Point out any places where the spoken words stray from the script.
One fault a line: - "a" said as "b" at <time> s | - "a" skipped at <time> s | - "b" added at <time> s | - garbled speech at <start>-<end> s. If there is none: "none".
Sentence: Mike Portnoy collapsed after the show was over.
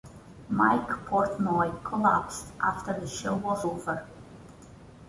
none